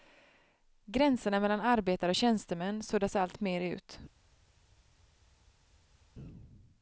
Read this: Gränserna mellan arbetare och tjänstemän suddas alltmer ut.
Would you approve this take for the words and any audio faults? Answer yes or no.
yes